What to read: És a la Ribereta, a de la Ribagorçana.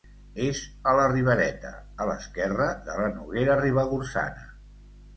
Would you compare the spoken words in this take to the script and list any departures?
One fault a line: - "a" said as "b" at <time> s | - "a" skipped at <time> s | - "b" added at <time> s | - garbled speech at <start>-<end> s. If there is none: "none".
- "l'esquerra" added at 2.1 s
- "Noguera" added at 3.2 s